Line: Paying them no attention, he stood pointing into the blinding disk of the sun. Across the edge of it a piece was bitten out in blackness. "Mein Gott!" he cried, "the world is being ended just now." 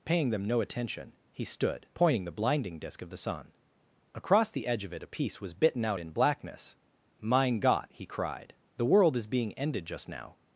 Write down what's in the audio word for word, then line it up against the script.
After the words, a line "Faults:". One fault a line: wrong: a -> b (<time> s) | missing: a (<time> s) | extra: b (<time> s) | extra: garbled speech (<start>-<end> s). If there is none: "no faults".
Paying them no attention, he stood pointing the blinding disk of the sun. Across the edge of it a piece was bitten out in blackness. "Mein Gott!" he cried, "the world is being ended just now."
Faults:
missing: into (2.2 s)